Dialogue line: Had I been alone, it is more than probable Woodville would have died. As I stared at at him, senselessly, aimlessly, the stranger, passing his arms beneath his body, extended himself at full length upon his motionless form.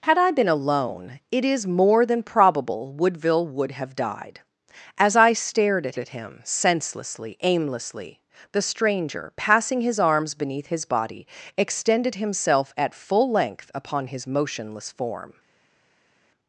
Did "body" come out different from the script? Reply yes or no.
no